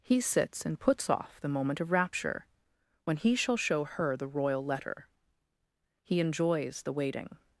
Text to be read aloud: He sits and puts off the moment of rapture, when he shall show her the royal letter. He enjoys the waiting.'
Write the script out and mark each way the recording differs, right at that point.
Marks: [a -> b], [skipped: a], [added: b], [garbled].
He sits and puts off the moment of rapture, when he shall show her the royal letter. He enjoys the waiting.'